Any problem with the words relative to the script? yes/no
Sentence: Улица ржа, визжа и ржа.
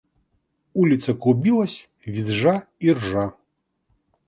yes